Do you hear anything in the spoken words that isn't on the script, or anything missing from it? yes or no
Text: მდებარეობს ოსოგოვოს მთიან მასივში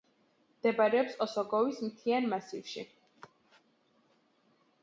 no